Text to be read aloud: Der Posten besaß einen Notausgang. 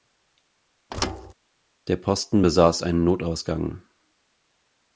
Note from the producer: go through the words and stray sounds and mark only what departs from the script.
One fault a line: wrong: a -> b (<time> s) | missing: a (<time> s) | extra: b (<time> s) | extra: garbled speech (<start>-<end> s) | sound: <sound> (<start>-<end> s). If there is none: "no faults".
sound: thud (0.9-1.3 s)